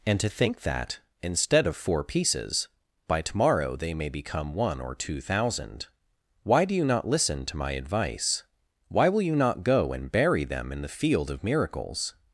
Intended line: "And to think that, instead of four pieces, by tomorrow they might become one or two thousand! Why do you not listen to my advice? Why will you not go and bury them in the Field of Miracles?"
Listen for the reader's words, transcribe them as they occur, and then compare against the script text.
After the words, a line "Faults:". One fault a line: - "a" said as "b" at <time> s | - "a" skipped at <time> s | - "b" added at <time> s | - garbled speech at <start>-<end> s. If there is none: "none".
"And to think that, instead of four pieces, by tomorrow they may become one or two thousand! Why do you not listen to my advice? Why will you not go and bury them in the Field of Miracles?"
Faults:
- "might" said as "may" at 3.9 s